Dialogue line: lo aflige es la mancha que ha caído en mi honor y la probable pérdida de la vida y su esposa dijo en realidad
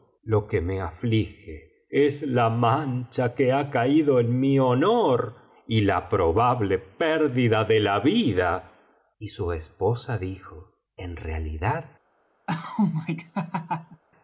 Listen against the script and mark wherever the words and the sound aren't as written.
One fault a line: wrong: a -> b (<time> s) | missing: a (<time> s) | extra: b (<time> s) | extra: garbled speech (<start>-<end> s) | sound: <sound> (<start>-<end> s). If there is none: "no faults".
extra: que me (0.5 s)
sound: laugh (12.5-14.0 s)